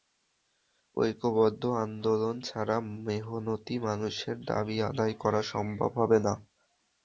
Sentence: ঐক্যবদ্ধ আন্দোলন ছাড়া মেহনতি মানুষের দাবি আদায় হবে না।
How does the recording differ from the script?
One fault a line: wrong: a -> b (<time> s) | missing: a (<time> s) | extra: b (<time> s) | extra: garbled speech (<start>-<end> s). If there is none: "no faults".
extra: করা সম্ভব (5.2 s)